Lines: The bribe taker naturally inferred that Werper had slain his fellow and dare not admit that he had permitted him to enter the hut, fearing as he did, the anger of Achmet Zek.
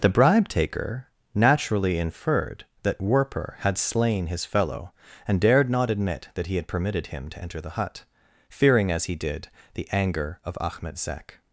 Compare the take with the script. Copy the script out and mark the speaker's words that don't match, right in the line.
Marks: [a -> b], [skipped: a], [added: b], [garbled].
The bribe taker naturally inferred that Werper had slain his fellow and [dare -> dared] not admit that he had permitted him to enter the hut, fearing as he did, the anger of Achmet Zek.